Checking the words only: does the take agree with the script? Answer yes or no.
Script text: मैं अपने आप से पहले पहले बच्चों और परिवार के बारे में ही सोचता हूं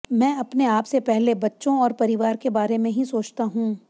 no